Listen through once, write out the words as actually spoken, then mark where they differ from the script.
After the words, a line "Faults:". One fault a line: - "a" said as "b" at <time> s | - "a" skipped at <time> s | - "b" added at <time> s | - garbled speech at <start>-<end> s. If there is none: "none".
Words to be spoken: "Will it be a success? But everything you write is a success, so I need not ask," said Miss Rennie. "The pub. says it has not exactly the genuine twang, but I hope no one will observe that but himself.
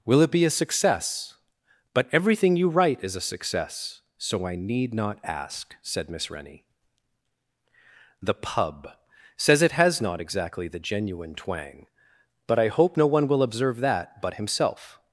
"Will it be a success? But everything you write is a success, so I need not ask," said Miss Rennie. "The pub. says it has not exactly the genuine twang, but I hope no one will observe that but himself.
Faults:
none